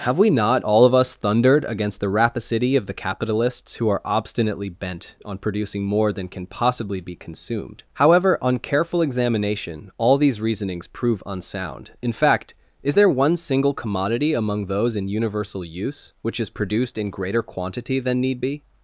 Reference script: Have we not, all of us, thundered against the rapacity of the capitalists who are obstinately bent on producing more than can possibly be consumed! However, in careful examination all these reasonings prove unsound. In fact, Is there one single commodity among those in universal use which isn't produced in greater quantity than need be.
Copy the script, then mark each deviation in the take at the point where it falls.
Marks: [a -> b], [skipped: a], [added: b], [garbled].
Have we not, all of us, thundered against the rapacity of the capitalists who are obstinately bent on producing more than can possibly be consumed! However, [in -> on] careful examination all these reasonings prove unsound. In fact, Is there one single commodity among those in universal use which [isn't -> is] produced in greater quantity than need be.